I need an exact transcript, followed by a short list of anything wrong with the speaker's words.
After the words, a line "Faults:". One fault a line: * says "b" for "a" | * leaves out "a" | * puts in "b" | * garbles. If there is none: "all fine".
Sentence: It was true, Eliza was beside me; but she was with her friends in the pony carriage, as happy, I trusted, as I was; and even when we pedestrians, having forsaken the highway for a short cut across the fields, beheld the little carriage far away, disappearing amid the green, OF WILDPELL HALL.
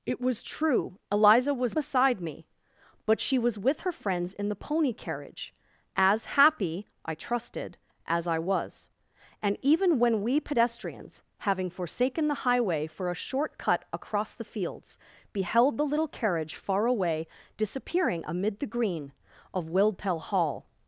It was true, Eliza was beside me; but she was with her friends in the pony carriage, as happy, I trusted, as I was; and even when we pedestrians, having forsaken the highway for a short cut across the fields, beheld the little carriage far away, disappearing amid the green, OF WILDPELL HALL.
Faults:
all fine